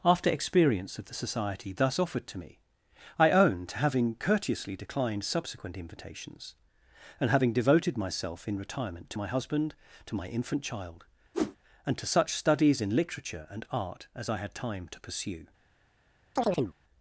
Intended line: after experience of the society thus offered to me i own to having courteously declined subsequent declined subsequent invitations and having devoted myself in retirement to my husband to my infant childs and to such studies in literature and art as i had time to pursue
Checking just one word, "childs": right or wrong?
wrong